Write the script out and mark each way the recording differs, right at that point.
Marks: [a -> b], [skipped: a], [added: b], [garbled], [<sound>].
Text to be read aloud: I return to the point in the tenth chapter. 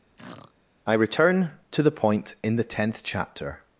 [throat clearing] I return to the point in the tenth chapter.